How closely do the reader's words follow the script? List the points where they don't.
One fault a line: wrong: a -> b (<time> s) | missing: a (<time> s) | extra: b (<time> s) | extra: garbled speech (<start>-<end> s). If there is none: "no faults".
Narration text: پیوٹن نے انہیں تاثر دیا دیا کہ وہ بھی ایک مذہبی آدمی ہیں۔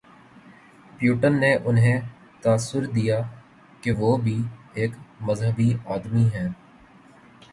missing: دیا (3.2 s)